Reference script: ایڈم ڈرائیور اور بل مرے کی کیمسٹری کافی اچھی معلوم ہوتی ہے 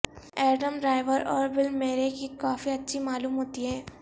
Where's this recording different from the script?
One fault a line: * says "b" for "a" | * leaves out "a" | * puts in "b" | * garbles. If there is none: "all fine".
* leaves out "کیمسٹری"